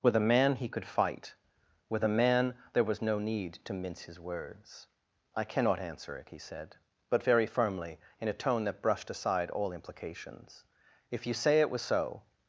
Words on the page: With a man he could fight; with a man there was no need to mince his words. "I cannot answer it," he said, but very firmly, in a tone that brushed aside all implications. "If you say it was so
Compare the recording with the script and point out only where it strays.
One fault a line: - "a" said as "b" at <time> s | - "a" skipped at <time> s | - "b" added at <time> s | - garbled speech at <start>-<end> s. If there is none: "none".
none